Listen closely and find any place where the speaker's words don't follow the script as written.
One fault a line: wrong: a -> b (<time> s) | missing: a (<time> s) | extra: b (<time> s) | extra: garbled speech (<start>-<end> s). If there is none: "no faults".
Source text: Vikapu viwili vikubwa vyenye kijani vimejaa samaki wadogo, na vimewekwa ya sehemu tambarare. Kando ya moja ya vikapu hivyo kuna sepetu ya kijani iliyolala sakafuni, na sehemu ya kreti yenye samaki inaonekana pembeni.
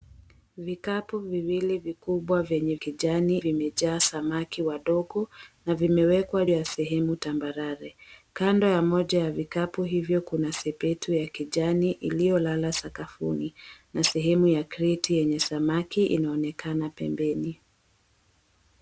no faults